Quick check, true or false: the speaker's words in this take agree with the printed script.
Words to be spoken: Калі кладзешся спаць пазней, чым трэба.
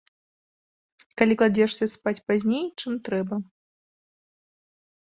true